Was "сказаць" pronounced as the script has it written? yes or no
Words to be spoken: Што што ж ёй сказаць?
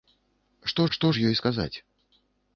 yes